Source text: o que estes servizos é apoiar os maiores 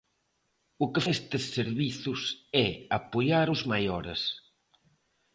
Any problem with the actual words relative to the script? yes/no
no